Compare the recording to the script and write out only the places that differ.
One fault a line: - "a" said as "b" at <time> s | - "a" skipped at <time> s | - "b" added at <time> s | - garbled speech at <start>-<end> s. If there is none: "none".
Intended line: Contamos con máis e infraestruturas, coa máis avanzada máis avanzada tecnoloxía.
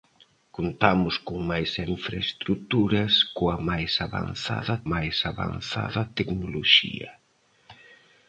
none